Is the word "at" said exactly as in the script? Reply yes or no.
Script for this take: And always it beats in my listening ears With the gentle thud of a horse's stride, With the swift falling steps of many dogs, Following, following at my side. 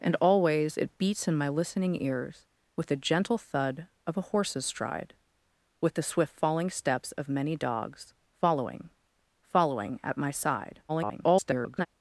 yes